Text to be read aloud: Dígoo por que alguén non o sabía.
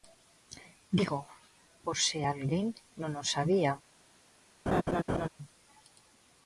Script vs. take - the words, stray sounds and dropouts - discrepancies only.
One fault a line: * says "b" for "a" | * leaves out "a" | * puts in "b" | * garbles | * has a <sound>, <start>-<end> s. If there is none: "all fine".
* says "se" for "que"
* has a laugh, 4.7-5.3 s